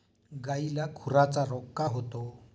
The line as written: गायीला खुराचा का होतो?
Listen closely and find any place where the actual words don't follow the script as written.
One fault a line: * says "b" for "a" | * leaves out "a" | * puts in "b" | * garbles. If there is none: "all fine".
* puts in "रोग"